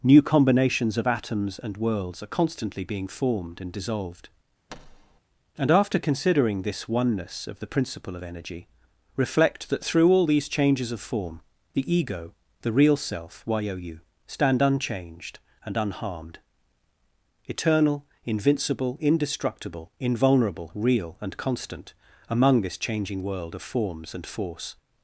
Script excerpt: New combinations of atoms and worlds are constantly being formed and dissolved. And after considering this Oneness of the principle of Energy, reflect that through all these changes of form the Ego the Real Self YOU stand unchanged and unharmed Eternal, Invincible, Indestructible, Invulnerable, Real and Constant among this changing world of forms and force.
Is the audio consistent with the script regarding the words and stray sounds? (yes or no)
no